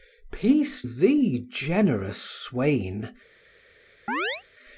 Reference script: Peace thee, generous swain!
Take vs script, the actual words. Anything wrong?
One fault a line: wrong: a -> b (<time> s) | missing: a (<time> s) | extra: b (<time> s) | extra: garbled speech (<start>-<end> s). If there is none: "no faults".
no faults